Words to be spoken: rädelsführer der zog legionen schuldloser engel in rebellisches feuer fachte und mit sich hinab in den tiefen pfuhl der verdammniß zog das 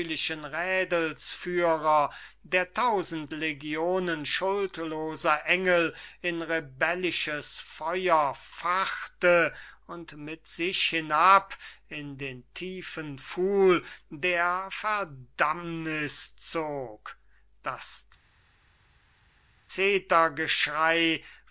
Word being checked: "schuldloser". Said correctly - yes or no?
yes